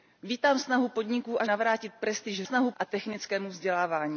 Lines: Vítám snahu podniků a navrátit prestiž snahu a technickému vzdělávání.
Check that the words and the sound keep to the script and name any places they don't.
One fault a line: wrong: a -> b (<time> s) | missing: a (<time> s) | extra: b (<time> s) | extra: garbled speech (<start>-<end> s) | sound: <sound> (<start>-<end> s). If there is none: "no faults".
no faults